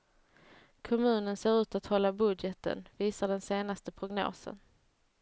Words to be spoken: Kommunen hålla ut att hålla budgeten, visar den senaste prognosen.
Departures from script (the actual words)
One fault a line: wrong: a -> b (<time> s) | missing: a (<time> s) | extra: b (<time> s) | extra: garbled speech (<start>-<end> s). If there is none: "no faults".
wrong: hålla -> ser (1.3 s)